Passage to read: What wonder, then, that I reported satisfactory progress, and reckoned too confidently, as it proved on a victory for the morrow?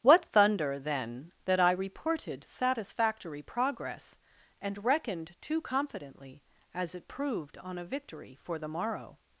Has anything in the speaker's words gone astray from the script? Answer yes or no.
yes